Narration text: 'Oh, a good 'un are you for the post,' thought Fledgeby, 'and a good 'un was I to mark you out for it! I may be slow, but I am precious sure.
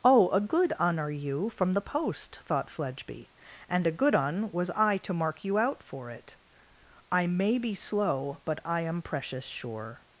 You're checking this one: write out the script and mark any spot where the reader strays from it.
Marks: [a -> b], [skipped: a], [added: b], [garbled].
'Oh, a good 'un are you [for -> from] the post,' thought Fledgeby, 'and a good 'un was I to mark you out for it! I may be slow, but I am precious sure.